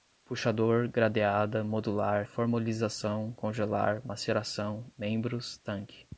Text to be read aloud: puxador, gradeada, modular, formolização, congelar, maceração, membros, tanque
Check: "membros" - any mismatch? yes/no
no